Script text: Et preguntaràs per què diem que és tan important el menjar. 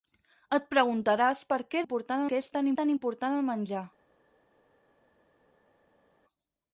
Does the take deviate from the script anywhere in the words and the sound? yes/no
yes